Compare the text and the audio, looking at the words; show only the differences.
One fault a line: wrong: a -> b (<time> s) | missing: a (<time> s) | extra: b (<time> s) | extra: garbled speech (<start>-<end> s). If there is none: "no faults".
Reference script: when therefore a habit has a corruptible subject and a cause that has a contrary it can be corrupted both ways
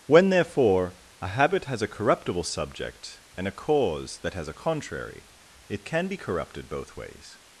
no faults